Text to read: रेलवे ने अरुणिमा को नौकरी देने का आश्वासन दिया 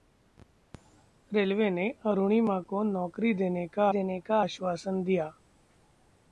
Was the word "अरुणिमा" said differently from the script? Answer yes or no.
no